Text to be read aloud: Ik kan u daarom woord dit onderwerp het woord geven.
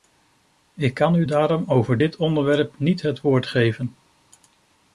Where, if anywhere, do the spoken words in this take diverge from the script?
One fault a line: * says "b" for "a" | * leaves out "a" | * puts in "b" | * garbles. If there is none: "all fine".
* says "over" for "woord"
* puts in "niet"